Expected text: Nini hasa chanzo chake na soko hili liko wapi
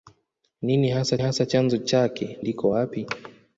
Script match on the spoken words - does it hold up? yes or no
no